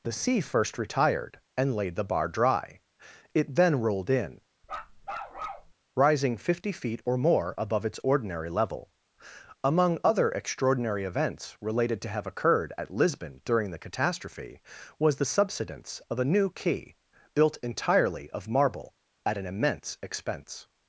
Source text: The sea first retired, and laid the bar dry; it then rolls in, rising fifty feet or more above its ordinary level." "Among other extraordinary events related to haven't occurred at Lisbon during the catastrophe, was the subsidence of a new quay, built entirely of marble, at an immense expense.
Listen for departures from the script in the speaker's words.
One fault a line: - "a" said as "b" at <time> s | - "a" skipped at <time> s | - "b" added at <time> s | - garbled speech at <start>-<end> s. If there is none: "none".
- "rolls" said as "rolled" at 3.8 s
- "haven't" said as "have" at 12.1 s